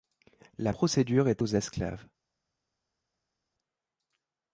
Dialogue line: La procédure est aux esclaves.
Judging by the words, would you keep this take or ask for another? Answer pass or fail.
pass